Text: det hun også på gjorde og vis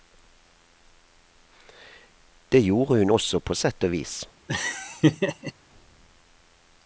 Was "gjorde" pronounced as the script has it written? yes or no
no